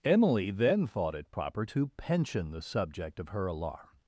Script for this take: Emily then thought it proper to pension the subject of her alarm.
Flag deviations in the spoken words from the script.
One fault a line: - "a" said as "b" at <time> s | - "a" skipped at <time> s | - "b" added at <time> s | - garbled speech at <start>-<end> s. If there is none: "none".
none